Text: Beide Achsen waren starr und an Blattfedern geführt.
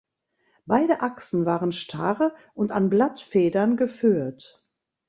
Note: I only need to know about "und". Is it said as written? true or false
true